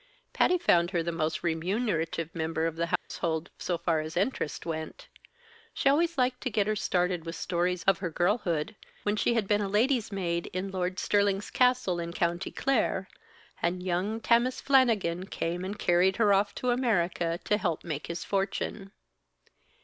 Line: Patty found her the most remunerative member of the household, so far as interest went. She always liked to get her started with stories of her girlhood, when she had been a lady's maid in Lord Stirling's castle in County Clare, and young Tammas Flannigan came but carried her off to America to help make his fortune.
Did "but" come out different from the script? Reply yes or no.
yes